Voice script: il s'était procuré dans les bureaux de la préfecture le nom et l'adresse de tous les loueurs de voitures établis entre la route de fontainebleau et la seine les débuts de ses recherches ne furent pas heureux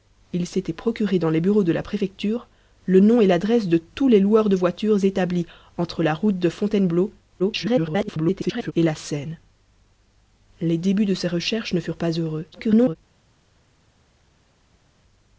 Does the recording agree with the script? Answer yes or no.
no